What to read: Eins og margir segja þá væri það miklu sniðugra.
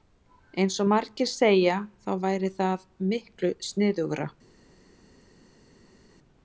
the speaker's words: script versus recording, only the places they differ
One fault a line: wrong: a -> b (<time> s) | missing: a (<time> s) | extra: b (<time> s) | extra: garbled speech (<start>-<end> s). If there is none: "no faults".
no faults